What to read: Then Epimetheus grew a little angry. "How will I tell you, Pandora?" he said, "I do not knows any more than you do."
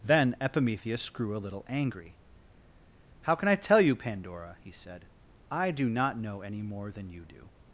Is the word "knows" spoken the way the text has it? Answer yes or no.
no